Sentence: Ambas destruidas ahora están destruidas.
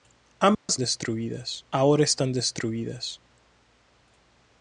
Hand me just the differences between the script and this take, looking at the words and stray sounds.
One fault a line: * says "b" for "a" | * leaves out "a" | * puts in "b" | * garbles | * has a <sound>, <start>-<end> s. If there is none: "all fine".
* has a dropout, 0.5-0.7 s